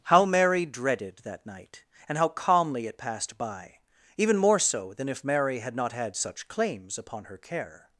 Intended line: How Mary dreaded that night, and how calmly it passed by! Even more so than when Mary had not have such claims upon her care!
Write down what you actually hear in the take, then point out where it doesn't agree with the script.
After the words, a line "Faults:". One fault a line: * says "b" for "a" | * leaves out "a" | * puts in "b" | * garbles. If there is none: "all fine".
How Mary dreaded that night, and how calmly it passed by! Even more so than if Mary had not had such claims upon her care!
Faults:
* says "if" for "when"
* says "had" for "have"